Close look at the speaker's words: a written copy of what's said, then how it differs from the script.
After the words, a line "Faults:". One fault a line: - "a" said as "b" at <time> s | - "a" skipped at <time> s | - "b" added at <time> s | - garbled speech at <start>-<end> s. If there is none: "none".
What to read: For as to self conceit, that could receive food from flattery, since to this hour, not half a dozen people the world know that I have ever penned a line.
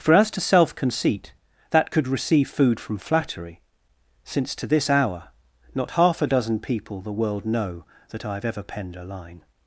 For as to self conceit, that could receive food from flattery, since to this hour, not half a dozen people the world know that I have ever penned a line.
Faults:
none